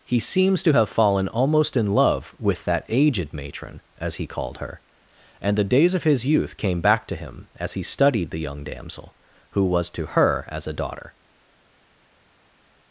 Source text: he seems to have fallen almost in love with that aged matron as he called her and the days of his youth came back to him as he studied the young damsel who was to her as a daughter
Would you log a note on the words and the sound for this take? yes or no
no